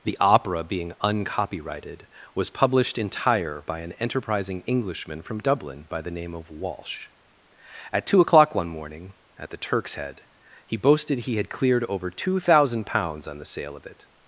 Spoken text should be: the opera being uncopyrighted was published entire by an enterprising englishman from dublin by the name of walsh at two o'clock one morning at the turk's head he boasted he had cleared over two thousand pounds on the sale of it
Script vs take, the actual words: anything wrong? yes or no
no